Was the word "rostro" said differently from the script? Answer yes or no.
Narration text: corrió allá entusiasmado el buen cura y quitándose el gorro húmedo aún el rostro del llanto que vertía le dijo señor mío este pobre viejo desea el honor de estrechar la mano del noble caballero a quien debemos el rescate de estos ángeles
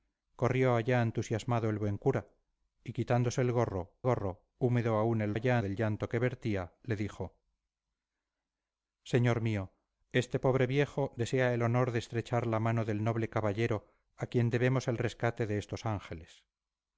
yes